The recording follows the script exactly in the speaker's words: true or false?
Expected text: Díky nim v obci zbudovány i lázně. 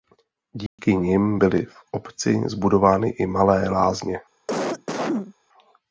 false